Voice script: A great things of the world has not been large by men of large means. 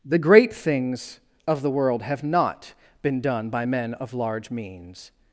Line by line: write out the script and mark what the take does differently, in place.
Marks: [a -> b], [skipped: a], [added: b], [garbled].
[A -> The] great things of the world [has -> have] not been [large -> done] by men of large means.